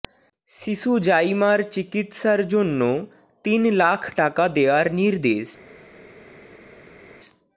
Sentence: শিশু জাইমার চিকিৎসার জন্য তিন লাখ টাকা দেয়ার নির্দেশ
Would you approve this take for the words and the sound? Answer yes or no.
yes